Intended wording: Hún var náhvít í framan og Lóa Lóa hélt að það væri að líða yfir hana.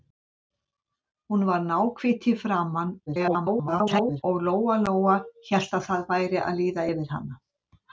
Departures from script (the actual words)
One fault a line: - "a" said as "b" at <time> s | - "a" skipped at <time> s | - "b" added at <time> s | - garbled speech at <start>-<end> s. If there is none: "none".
- garbled speech at 3.1-4.2 s